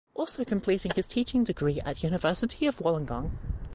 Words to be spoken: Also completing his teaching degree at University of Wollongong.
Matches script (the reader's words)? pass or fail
pass